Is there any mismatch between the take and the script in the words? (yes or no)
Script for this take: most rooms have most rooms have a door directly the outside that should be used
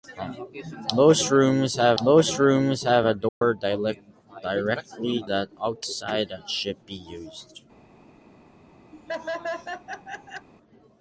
no